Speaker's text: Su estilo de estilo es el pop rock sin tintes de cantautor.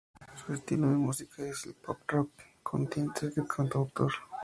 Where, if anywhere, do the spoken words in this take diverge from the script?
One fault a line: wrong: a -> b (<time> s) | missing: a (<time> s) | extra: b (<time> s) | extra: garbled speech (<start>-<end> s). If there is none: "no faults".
wrong: estilo -> música (0.9 s)
wrong: sin -> con (2.6 s)